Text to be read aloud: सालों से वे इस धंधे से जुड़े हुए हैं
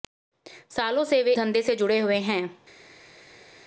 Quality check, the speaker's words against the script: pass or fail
fail